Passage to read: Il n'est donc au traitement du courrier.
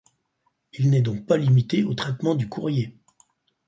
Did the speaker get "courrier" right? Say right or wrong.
right